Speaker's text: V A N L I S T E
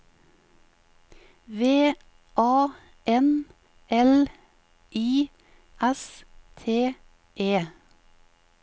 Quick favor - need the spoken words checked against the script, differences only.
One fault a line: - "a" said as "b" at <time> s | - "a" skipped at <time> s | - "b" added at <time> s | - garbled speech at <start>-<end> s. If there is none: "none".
none